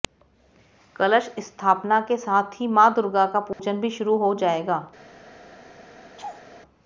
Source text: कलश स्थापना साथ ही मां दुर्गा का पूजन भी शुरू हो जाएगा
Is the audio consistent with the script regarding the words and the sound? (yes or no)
no